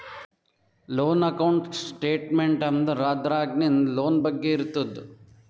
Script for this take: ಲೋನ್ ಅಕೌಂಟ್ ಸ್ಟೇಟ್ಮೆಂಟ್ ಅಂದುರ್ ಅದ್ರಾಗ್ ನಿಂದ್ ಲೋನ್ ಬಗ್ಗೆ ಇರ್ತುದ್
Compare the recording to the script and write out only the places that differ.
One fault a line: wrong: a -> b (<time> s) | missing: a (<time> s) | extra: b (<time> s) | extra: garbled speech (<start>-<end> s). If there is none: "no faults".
no faults